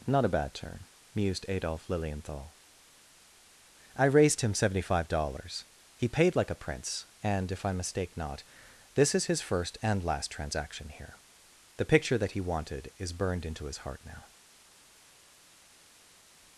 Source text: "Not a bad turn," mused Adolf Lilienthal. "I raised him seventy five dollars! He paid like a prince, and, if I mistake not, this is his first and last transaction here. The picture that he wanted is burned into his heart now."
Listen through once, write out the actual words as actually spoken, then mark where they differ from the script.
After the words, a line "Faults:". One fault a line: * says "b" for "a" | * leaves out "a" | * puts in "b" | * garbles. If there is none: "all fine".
"Not a bad turn," mused Adolf Lilienthal. "I raised him seventy five dollars! He paid like a prince, and, if I mistake not, this is his first and last transaction here. The picture that he wanted is burned into his heart now."
Faults:
all fine